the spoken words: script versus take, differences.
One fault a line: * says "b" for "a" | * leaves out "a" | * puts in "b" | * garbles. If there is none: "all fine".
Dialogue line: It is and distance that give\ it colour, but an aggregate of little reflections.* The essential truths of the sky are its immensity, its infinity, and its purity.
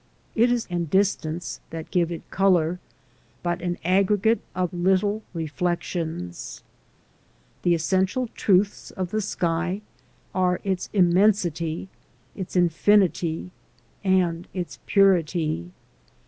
all fine